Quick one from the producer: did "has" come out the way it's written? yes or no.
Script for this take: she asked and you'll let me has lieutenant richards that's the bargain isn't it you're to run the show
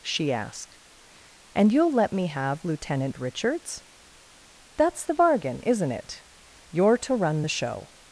no